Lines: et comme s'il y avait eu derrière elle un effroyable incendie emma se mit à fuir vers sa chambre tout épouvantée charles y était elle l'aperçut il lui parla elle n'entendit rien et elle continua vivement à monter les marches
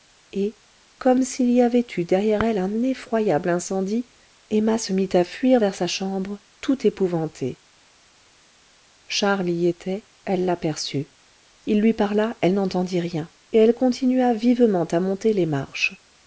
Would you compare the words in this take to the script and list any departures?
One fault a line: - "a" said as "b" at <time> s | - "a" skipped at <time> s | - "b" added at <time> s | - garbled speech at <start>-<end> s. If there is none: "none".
none